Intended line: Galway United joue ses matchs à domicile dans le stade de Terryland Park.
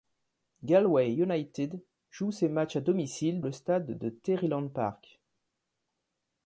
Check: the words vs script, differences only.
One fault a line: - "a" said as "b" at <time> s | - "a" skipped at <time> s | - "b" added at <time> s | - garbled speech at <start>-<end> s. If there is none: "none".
- "dans" skipped at 3.4 s